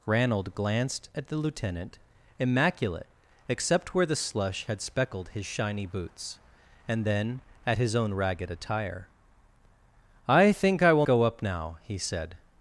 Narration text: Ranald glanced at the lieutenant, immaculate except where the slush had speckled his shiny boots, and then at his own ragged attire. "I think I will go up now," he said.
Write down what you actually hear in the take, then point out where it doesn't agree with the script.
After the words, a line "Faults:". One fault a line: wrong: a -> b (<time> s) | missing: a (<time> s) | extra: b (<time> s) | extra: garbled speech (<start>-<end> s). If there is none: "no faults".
Ranald glanced at the lieutenant, immaculate except where the slush had speckled his shiny boots, and then at his own ragged attire. "I think I will go up now," he said.
Faults:
no faults